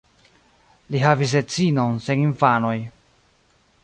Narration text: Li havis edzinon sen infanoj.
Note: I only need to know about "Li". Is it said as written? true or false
true